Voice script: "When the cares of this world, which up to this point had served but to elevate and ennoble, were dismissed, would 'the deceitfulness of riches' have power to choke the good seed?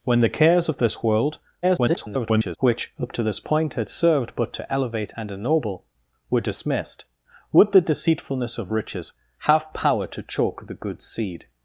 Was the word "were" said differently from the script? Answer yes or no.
no